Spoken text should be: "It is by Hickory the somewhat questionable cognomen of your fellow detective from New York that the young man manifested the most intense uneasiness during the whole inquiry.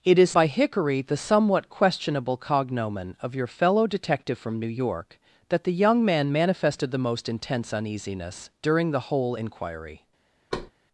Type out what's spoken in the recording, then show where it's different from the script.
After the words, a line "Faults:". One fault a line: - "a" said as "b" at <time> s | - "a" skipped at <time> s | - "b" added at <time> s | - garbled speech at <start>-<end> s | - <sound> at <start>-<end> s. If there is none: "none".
"It is by Hickory the somewhat questionable cognomen of your fellow detective from New York that the young man manifested the most intense uneasiness during the whole inquiry.
Faults:
- thud at 10.5-10.7 s